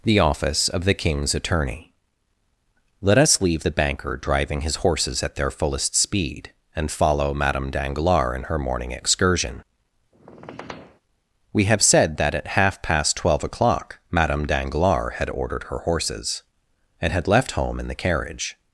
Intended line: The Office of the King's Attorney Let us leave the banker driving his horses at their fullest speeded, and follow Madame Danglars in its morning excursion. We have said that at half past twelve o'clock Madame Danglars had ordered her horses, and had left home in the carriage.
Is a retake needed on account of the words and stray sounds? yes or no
yes